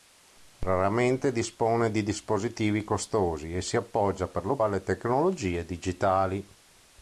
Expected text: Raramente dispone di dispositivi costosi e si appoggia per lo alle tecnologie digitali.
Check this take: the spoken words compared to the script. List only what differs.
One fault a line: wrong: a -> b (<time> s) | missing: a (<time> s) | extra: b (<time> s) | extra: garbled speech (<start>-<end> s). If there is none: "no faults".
no faults